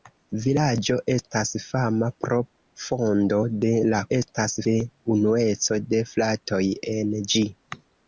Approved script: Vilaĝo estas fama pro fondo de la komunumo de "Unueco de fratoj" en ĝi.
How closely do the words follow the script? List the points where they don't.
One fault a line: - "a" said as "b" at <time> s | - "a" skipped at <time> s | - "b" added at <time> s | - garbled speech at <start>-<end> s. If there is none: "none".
- "komunumo" said as "estas" at 4.2 s